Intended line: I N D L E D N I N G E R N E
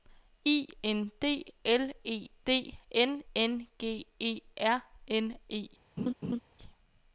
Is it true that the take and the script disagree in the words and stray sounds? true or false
true